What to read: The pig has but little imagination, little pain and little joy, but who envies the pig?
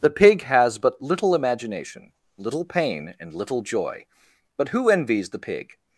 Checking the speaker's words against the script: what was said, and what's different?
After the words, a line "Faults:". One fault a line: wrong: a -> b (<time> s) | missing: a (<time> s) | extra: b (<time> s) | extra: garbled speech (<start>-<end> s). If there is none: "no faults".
The pig has but little imagination, little pain and little joy, but who envies the pig?
Faults:
no faults